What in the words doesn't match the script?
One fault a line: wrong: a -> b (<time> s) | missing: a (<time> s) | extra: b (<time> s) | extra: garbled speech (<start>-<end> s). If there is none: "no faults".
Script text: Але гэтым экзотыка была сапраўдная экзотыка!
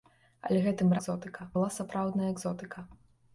no faults